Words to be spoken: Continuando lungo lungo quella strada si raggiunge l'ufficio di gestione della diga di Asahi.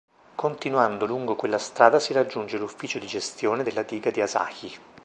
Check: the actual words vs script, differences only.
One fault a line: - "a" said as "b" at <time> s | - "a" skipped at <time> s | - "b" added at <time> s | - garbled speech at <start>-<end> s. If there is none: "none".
- "lungo" skipped at 1.3 s